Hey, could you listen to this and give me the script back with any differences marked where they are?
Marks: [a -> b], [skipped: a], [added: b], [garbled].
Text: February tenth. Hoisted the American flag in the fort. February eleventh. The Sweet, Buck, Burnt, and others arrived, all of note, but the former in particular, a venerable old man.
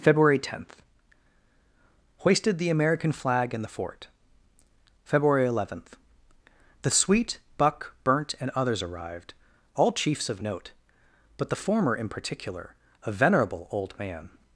February tenth. Hoisted the American flag in the fort. February eleventh. The Sweet, Buck, Burnt, and others arrived, all [added: chiefs] of note, but the former in particular, a venerable old man.